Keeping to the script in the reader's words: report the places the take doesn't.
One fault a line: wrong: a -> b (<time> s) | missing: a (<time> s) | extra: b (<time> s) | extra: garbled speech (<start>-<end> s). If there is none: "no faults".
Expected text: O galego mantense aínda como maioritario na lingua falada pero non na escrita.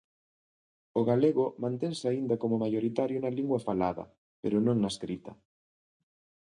no faults